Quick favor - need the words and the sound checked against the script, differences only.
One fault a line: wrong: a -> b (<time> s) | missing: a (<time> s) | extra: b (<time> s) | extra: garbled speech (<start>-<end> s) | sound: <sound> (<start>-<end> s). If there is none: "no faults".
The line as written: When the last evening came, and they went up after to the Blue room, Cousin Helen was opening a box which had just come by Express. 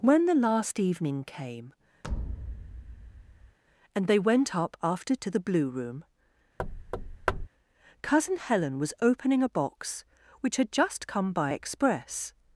sound: thud (2.0-3.6 s)
sound: thud (6.6-7.5 s)